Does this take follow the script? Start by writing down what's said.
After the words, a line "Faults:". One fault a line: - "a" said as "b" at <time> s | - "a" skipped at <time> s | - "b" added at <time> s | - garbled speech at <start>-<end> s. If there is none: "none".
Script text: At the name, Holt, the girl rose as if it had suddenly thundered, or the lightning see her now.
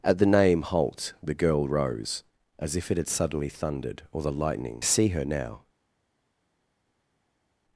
At the name, Holt, the girl rose as if it had suddenly thundered, or the lightning see her now.
Faults:
none